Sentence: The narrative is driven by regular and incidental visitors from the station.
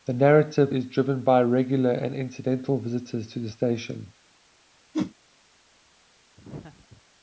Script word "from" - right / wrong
wrong